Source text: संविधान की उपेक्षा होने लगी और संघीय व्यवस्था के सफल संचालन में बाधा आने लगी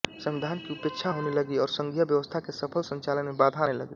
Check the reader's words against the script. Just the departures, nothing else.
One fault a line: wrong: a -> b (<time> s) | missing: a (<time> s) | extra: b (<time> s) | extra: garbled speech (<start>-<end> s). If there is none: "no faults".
no faults